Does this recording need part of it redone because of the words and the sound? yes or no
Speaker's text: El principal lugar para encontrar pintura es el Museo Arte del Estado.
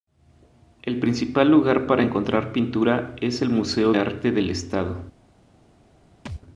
yes